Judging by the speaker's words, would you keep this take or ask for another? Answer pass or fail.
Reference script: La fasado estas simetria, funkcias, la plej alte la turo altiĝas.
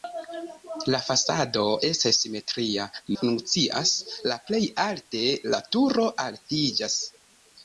pass